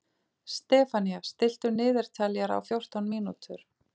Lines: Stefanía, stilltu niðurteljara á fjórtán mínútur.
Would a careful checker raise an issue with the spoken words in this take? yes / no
no